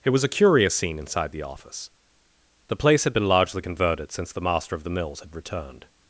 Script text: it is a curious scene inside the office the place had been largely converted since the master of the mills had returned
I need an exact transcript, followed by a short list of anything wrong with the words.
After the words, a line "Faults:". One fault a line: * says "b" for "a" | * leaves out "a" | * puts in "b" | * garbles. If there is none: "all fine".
it was a curious scene inside the office the place had been largely converted since the master of the mills had returned
Faults:
* says "was" for "is"